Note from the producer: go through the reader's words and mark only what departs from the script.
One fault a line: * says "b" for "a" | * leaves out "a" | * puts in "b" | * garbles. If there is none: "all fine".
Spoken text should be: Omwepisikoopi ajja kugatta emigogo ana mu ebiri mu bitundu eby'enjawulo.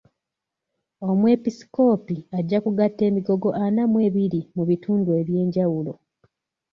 all fine